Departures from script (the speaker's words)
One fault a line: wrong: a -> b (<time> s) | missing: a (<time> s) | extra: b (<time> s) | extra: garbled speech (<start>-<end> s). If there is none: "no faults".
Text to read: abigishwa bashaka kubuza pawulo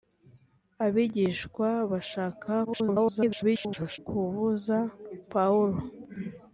extra: garbled speech (2.7-4.0 s)